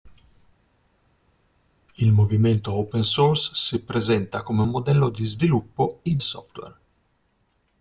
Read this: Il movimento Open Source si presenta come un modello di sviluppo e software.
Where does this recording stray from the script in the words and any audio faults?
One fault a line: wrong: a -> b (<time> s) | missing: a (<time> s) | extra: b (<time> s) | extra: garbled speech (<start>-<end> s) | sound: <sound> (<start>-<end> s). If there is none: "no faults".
no faults